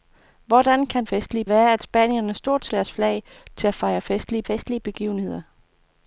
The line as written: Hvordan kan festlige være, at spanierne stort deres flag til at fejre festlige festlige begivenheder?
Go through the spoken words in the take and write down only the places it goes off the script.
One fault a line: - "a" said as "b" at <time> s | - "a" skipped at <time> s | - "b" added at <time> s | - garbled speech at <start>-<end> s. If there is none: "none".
none